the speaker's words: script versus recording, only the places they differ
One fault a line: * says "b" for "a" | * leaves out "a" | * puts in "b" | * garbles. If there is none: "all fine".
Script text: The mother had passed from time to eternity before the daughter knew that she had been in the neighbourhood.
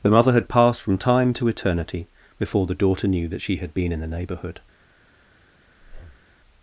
all fine